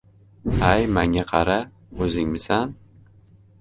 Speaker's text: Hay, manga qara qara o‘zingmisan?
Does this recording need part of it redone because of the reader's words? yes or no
yes